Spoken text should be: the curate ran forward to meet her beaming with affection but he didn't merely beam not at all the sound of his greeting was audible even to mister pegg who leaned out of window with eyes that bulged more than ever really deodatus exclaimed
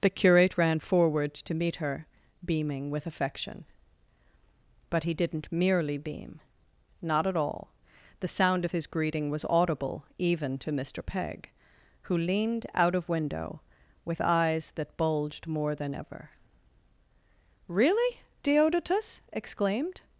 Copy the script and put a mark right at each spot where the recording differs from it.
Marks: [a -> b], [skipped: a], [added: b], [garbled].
the curate ran forward to meet her beaming with affection but he didn't merely beam not at all the sound of his greeting was audible even to mister pegg who leaned out of window with eyes that bulged more than ever really deodatus exclaimed